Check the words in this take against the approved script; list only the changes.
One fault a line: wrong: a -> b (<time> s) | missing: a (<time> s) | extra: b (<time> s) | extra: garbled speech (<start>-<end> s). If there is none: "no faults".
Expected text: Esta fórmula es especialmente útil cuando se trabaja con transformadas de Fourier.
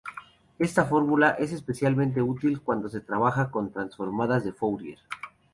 no faults